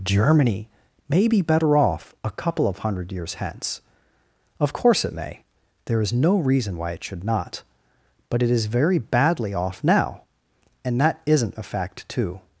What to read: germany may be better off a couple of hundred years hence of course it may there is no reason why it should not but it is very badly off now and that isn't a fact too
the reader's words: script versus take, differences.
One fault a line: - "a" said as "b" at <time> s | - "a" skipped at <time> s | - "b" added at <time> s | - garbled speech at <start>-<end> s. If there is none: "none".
none